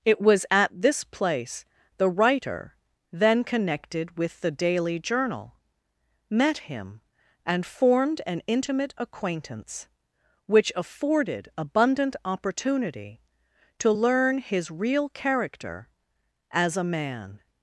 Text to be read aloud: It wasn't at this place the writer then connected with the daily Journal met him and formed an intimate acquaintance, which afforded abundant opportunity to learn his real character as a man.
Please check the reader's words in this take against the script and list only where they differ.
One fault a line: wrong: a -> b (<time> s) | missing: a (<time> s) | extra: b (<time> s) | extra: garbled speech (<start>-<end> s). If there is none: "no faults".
wrong: wasn't -> was (0.2 s)